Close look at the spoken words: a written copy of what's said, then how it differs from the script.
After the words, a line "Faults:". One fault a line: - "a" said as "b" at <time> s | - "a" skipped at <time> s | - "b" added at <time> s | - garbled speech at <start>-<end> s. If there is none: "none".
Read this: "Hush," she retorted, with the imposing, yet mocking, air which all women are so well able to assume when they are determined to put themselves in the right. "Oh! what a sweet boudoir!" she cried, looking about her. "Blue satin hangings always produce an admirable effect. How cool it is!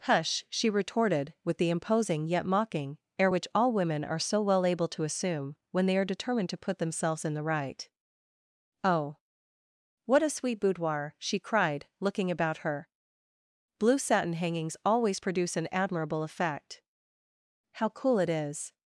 "Hush," she retorted, with the imposing, yet mocking, air which all women are so well able to assume when they are determined to put themselves in the right. "Oh! what a sweet boudoir!" she cried, looking about her. "Blue satin hangings always produce an admirable effect. How cool it is!
Faults:
none